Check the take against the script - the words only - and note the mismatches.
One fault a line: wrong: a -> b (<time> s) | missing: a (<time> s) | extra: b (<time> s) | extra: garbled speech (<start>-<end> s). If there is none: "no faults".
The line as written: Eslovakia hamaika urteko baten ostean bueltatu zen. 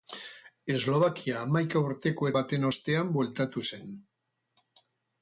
no faults